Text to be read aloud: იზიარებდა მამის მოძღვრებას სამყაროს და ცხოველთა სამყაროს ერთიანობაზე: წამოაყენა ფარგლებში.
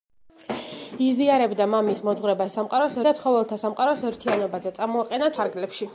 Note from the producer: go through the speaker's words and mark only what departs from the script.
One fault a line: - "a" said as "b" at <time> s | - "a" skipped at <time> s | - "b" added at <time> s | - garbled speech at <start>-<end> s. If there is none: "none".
none